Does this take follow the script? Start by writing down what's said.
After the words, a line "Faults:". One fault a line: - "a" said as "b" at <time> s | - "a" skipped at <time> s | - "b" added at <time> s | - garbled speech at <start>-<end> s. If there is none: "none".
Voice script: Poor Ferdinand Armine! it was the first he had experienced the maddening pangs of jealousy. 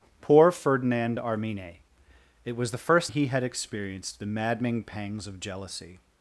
Poor Ferdinand Armine! it was the first he had experienced the maddening pangs of jealousy.
Faults:
none